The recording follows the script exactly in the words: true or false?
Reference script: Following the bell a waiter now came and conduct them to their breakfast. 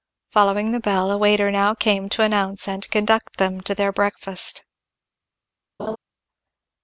false